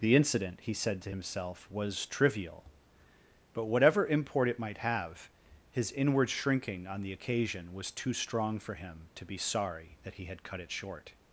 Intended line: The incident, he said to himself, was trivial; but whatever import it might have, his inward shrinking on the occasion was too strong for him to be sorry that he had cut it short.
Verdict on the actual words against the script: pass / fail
pass